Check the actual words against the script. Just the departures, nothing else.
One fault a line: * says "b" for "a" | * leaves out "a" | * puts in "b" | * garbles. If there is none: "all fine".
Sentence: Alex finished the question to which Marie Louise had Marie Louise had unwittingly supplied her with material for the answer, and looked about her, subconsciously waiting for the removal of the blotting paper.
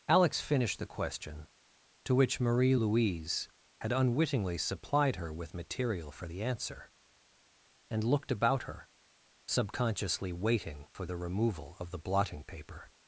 * leaves out "Marie Louise had"